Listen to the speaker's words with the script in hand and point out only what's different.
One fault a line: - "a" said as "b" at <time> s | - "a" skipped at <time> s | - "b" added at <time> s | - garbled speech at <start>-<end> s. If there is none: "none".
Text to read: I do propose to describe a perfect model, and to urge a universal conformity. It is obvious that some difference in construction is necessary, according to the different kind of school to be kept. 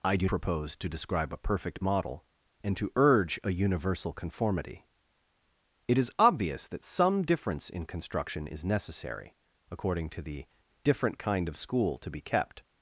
none